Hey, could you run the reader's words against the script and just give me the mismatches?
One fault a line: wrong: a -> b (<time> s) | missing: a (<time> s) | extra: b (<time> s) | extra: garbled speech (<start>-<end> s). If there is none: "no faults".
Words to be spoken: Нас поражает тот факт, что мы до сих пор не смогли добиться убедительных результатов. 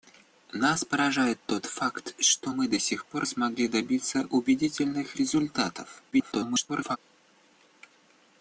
missing: не (3.3 s)
extra: garbled speech (6.1-7.0 s)